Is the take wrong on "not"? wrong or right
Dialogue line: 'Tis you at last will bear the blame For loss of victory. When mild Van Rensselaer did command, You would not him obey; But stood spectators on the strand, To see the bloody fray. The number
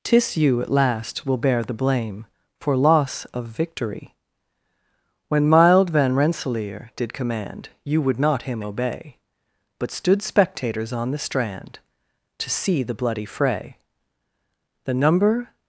right